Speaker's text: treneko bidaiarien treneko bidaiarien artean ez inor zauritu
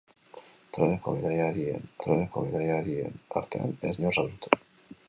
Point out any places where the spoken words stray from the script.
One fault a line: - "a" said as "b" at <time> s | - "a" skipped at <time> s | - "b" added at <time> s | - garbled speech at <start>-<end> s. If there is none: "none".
none